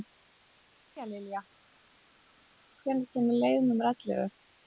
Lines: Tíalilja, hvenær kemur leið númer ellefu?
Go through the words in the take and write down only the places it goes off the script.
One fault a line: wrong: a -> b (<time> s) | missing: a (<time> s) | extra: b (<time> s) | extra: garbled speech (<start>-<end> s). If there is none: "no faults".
no faults